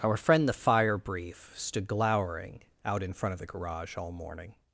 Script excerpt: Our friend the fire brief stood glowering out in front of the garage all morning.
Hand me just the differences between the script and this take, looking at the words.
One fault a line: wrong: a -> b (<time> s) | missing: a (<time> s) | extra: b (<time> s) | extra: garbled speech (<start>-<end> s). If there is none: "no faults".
no faults